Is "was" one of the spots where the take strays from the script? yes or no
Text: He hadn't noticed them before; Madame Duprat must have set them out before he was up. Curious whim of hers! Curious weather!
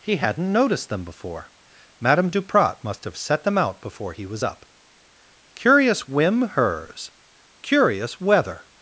no